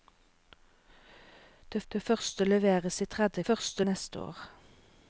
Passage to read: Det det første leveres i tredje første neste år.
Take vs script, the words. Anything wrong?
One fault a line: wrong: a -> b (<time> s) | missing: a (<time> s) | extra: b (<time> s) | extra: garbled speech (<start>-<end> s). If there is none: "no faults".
no faults